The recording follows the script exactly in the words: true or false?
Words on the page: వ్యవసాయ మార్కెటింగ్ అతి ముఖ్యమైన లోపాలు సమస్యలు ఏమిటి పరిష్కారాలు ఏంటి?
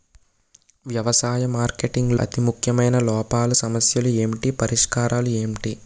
true